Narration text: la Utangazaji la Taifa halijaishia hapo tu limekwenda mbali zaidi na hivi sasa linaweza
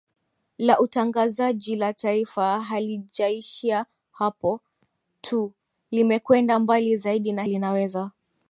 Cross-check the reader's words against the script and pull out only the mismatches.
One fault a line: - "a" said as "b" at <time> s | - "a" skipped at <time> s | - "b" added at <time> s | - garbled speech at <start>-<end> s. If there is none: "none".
- "hivi sasa" skipped at 7.4 s